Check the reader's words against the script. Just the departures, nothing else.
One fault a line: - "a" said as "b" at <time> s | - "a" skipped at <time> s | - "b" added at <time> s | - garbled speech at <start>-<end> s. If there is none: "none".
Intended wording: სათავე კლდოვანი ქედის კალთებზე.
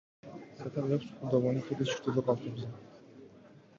- "აქვს" added at 1.0 s
- "ჩრდილო" added at 2.0 s